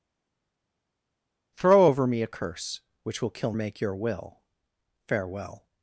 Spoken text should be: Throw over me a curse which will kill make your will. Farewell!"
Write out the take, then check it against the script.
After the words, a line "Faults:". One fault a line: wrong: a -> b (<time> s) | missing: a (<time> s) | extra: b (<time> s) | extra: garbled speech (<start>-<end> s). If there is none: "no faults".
Throw over me a curse which will kill make your will. Farewell!"
Faults:
no faults